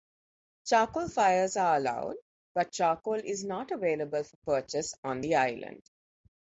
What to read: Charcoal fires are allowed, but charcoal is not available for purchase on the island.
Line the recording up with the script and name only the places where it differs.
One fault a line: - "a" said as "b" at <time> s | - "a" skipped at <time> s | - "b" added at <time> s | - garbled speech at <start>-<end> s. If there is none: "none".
none